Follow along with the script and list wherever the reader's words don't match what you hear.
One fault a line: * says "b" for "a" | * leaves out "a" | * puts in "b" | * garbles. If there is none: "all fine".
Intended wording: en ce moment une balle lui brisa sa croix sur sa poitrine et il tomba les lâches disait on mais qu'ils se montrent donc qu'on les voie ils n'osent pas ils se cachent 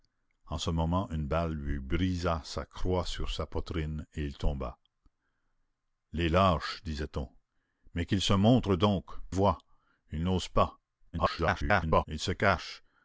* leaves out "qu'on les"
* garbles